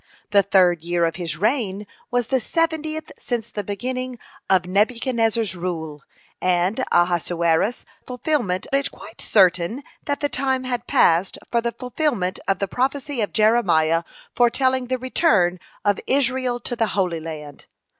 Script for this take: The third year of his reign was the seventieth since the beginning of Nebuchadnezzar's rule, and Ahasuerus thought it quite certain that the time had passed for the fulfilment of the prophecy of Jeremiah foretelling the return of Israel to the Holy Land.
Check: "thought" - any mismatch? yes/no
yes